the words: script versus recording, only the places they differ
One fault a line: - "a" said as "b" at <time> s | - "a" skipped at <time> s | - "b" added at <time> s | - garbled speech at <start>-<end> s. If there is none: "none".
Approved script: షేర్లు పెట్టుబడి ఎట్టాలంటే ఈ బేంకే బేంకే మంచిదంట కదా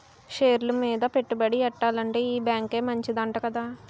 - "మీద" added at 0.8 s
- "బేంకే" skipped at 2.8 s